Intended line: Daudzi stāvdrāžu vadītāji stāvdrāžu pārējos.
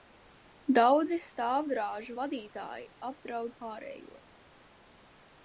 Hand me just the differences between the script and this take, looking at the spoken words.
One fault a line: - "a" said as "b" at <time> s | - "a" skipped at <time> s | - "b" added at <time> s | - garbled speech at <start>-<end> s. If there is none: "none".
- "stāvdrāžu" said as "apdraud" at 3.1 s